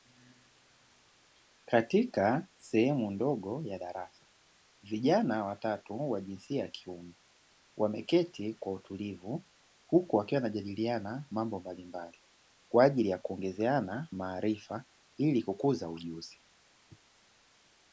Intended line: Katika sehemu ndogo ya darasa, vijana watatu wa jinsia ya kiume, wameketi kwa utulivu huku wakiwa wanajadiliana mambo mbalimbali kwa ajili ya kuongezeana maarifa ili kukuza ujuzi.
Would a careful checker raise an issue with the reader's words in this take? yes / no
no